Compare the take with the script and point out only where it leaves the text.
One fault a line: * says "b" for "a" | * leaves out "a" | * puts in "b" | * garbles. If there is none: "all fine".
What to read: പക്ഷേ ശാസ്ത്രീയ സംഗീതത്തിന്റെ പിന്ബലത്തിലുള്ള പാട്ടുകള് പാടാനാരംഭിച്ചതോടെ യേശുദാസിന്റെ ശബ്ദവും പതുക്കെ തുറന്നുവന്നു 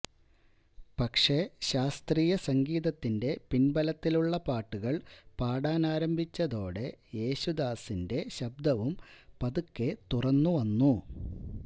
all fine